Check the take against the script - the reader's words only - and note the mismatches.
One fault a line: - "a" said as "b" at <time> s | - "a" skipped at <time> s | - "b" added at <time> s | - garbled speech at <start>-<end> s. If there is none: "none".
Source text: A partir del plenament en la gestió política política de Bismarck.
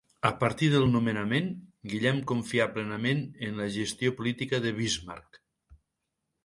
- "nomenament Guillem confià" added at 0.9 s
- "política" skipped at 4.6 s